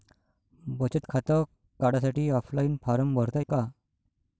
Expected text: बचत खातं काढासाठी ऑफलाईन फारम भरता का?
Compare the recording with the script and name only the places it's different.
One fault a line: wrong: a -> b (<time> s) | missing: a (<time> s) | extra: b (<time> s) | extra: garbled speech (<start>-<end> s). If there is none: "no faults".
no faults